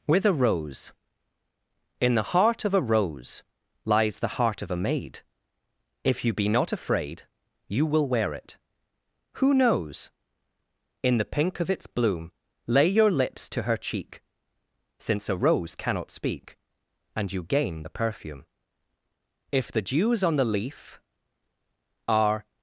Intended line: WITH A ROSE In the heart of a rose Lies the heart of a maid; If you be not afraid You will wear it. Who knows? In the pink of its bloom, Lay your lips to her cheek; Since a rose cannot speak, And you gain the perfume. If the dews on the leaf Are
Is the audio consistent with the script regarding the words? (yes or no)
yes